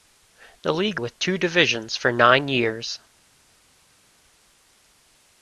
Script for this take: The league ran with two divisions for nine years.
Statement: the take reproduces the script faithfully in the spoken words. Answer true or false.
false